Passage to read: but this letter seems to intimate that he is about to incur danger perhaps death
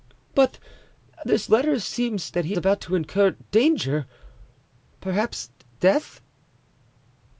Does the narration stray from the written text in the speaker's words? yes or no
yes